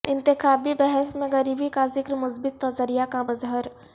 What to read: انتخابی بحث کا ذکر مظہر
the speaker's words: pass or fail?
fail